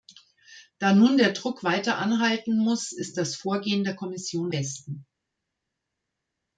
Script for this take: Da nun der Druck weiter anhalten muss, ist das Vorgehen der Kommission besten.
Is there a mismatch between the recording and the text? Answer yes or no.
no